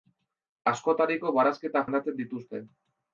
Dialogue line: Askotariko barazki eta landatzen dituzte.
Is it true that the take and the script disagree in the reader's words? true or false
false